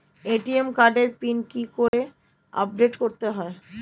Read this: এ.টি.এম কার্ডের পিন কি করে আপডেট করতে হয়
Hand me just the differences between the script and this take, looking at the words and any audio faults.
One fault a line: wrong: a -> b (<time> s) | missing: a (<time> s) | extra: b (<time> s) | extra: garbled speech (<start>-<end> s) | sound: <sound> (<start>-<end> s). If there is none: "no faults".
sound: dropout (1.9-1.9 s)